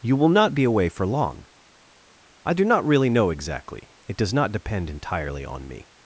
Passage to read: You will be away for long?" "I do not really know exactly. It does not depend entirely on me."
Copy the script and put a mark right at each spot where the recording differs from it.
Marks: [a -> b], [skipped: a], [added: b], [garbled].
You will [added: not] be away for long?" "I do not really know exactly. It does not depend entirely on me."